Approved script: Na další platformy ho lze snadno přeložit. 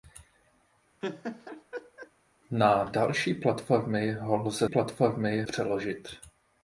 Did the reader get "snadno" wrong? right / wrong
wrong